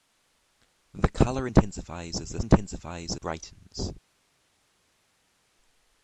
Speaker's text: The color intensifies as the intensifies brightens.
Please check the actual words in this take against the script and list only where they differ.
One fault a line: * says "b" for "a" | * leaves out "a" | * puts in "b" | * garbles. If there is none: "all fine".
all fine